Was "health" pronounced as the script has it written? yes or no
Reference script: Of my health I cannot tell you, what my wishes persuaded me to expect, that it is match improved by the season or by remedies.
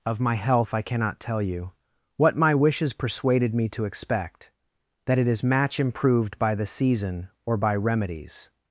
yes